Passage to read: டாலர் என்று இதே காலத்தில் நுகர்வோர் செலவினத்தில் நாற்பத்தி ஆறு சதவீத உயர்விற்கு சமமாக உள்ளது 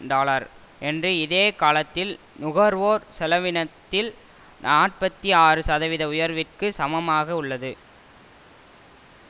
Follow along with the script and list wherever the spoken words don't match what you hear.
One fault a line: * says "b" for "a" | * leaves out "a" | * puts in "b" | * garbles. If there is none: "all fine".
all fine